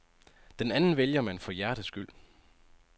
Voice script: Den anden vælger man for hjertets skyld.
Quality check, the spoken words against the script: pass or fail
pass